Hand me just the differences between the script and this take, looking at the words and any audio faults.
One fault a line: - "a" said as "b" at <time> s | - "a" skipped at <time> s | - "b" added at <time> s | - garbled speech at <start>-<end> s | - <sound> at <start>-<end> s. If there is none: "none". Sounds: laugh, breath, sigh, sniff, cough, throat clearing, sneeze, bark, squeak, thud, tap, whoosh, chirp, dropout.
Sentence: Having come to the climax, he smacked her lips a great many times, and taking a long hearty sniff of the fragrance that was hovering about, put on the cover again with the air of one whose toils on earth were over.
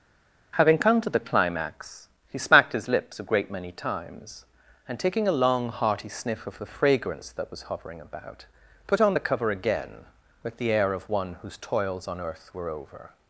- "her" said as "his" at 2.7 s